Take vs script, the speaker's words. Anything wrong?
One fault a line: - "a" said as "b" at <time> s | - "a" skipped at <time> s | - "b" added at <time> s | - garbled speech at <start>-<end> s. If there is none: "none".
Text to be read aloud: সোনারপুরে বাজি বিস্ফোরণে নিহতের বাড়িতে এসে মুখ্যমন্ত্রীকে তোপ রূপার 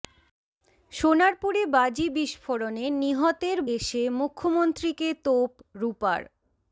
- "বাড়িতে" skipped at 3.6 s